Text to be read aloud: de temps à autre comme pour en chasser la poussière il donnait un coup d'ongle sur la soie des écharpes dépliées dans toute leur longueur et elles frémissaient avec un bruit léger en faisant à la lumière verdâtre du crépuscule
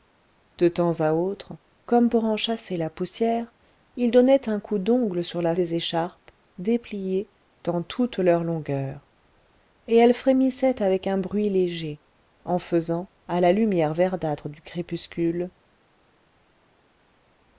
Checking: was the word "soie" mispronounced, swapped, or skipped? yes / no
yes